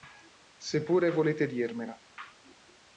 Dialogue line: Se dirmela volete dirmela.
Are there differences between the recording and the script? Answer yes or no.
yes